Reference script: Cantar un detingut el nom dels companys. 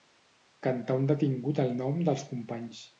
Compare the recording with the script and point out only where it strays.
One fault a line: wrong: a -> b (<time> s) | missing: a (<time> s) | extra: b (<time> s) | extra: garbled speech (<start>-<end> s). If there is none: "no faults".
no faults